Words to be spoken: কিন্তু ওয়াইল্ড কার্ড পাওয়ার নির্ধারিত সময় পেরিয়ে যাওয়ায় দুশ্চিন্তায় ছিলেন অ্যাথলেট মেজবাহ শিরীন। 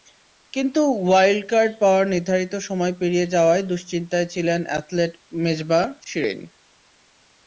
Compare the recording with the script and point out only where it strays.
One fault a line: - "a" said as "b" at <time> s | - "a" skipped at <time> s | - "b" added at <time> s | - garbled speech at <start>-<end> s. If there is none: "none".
none